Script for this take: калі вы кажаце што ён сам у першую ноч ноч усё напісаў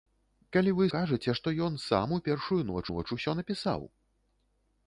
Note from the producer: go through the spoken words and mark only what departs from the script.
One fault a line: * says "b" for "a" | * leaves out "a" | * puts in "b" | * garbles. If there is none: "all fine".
all fine